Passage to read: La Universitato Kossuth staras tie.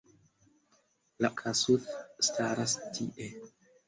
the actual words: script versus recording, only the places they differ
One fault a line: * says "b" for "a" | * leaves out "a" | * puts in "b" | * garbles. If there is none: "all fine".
* leaves out "Universitato"